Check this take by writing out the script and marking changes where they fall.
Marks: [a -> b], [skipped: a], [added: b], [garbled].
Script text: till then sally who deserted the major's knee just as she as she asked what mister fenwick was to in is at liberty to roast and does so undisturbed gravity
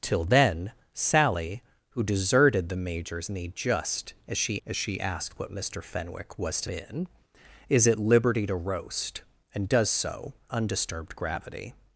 till then sally who deserted the major's knee just as she as she asked what mister fenwick was to in is at liberty to roast and does so undisturbed gravity